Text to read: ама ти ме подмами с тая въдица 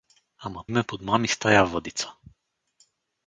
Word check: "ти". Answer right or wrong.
wrong